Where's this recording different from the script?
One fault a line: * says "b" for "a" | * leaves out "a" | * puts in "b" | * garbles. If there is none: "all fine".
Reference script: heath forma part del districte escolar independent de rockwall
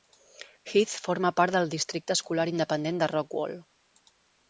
all fine